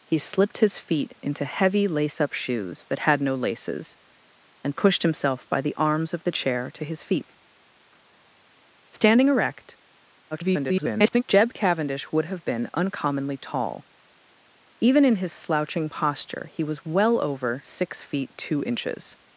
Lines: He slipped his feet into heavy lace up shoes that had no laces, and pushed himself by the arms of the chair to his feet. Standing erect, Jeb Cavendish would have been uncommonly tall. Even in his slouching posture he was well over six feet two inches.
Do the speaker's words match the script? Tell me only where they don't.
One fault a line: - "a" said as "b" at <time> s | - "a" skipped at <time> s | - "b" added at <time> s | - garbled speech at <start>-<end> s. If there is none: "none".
- garbled speech at 10.3-11.2 s